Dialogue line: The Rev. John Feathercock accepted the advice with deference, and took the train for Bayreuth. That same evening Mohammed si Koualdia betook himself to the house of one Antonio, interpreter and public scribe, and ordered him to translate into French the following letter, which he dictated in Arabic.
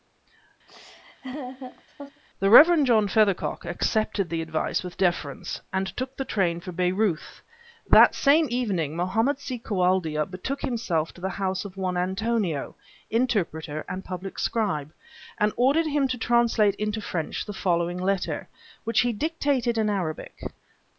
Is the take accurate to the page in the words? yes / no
yes